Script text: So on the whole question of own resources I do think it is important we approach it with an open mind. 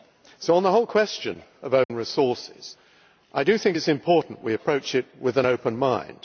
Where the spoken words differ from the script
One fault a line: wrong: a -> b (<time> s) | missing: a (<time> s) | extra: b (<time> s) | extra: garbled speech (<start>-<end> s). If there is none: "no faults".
no faults